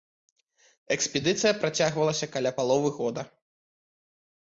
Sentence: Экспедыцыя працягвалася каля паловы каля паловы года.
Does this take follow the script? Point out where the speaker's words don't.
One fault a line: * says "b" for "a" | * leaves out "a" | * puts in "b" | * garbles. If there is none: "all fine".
* leaves out "каля паловы"